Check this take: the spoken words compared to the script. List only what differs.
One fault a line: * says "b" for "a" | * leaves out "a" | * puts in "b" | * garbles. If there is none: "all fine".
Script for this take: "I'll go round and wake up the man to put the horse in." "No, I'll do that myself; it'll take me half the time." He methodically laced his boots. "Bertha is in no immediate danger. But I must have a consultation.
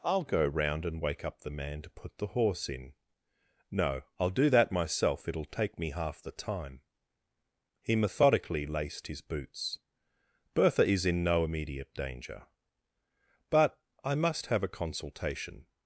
all fine